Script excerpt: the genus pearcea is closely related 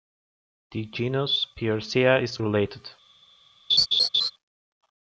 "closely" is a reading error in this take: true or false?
true